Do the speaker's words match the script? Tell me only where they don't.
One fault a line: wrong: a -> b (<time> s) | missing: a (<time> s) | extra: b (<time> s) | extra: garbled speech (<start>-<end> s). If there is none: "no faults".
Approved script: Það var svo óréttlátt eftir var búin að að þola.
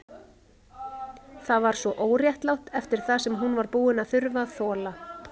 extra: það sem hún (3.1 s)
extra: þurfa (4.2 s)